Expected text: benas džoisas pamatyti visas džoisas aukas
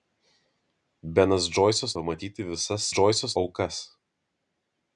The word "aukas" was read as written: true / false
true